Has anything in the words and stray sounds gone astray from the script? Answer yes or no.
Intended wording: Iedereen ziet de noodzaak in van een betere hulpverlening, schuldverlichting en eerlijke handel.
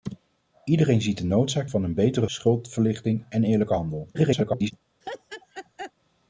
yes